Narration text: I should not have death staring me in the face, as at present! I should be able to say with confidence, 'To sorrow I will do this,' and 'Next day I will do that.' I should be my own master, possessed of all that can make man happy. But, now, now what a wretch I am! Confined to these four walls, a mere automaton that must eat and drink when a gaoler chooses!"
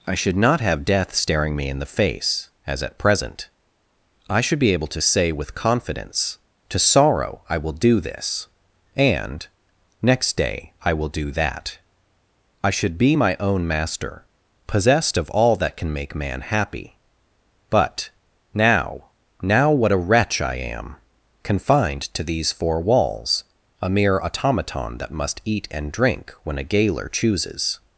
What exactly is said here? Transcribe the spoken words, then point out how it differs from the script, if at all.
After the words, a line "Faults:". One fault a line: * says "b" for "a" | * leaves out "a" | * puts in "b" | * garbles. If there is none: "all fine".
I should not have death staring me in the face, as at present! I should be able to say with confidence, 'To sorrow I will do this,' and 'Next day I will do that.' I should be my own master, possessed of all that can make man happy. But, now, now what a wretch I am! Confined to these four walls, a mere automaton that must eat and drink when a gaoler chooses!"
Faults:
all fine